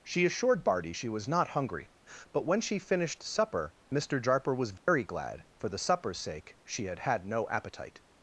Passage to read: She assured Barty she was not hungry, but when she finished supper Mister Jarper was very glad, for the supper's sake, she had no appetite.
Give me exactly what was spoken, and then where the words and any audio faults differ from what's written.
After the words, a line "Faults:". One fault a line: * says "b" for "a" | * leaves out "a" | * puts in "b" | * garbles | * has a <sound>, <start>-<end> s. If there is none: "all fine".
She assured Barty she was not hungry, but when she finished supper Mister Jarper was very glad, for the supper's sake, she had had no appetite.
Faults:
* has a dropout, 4.8-4.9 s
* puts in "had"